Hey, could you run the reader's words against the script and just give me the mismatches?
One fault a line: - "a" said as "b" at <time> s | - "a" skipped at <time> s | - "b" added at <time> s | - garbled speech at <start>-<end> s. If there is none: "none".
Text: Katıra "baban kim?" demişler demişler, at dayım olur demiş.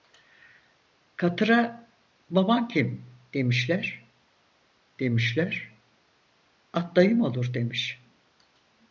none